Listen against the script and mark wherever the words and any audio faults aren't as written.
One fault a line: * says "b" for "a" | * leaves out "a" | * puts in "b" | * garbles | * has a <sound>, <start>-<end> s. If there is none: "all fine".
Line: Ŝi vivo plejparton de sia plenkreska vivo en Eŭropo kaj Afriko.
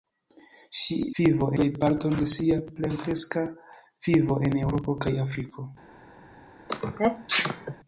* has a sneeze, 6.7-7.8 s